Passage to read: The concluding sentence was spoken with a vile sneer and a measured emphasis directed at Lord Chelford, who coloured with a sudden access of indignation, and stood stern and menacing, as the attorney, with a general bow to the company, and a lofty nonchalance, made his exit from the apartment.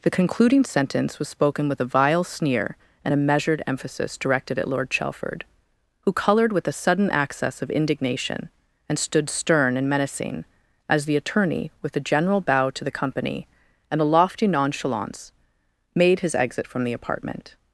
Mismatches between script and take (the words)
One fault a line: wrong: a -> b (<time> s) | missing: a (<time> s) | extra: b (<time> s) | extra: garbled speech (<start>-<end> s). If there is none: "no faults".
no faults